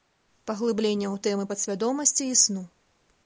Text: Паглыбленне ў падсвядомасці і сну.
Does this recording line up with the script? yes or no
no